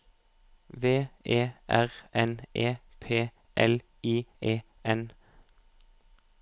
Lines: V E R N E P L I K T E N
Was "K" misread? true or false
true